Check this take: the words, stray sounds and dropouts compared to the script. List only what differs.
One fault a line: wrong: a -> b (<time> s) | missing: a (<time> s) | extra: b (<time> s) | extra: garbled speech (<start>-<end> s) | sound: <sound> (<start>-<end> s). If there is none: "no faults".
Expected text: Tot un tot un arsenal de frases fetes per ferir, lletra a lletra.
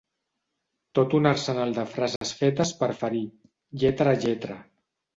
missing: tot un (1.3 s)
sound: dropout (2.2-2.2 s)